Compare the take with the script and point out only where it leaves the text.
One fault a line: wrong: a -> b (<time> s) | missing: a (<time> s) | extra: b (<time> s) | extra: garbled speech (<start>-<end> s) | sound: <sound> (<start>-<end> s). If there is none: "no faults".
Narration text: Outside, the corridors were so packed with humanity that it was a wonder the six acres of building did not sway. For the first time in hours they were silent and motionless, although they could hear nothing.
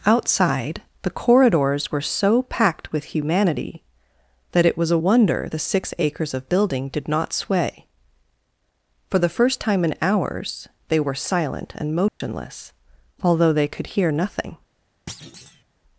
sound: dropout (12.1-12.2 s)
sound: thud (15.1-15.6 s)